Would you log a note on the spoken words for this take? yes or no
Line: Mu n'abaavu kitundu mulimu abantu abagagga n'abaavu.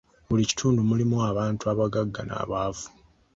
yes